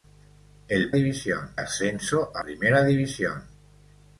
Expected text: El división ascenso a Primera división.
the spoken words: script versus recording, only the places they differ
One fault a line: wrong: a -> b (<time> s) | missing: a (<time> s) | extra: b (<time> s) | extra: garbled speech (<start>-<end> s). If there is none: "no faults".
no faults